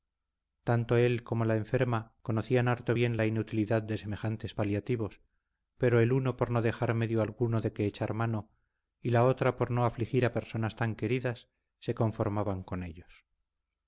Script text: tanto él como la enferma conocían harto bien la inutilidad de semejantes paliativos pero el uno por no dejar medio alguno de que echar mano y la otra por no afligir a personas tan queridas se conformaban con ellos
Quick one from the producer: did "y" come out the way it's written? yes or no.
yes